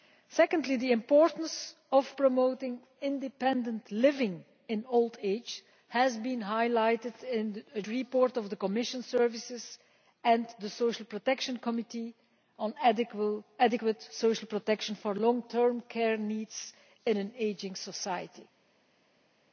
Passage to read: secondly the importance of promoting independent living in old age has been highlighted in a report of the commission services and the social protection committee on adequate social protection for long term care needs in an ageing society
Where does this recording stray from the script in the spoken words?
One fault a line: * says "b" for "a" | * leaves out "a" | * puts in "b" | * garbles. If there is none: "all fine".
all fine